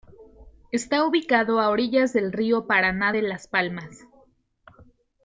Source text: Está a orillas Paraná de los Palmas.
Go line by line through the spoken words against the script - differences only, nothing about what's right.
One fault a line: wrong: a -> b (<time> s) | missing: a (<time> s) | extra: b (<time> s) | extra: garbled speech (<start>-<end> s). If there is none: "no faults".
extra: ubicado (1.1 s)
extra: del río (2.1 s)
wrong: los -> las (3.2 s)